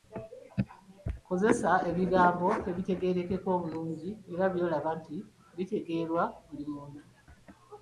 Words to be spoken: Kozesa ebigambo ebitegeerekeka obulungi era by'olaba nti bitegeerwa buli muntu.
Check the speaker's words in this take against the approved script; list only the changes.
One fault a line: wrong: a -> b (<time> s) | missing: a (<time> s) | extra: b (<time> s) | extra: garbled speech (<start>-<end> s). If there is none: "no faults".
no faults